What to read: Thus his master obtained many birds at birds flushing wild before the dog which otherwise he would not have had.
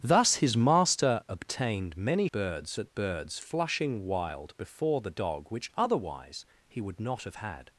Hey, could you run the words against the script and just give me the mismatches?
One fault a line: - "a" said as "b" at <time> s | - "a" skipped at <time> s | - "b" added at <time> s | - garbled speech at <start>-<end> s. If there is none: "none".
none